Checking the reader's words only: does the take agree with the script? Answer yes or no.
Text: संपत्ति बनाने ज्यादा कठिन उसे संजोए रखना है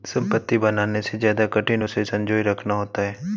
no